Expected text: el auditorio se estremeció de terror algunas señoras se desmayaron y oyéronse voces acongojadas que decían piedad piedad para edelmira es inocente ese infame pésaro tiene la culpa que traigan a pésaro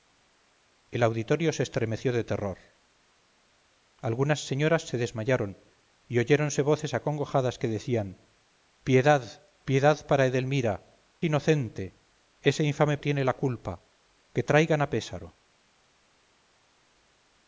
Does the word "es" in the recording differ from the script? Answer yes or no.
yes